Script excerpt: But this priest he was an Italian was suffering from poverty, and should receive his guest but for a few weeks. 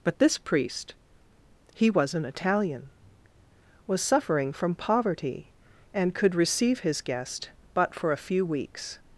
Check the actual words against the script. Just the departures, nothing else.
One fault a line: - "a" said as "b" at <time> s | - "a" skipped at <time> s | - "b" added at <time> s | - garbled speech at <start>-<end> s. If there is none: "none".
- "should" said as "could" at 6.1 s